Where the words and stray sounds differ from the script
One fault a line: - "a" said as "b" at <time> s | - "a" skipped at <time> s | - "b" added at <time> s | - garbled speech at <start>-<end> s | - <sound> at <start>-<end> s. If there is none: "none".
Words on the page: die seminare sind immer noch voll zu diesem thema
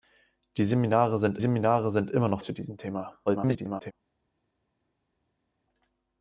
- "seminare sind" added at 1.4 s
- "voll" skipped at 2.4 s
- garbled speech at 3.3-3.9 s